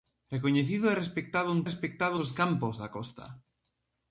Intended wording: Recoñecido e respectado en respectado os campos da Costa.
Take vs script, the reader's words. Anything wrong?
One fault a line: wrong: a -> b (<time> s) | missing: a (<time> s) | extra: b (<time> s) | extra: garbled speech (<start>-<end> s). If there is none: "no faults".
no faults